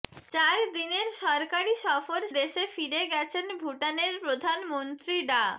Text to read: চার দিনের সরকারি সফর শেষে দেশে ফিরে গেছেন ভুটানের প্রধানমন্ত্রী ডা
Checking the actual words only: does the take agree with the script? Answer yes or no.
no